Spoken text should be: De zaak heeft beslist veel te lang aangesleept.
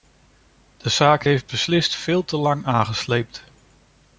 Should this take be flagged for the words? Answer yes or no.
no